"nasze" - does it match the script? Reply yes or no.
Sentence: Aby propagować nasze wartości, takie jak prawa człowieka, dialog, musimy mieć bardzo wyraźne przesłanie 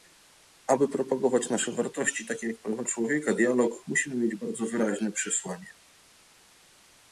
yes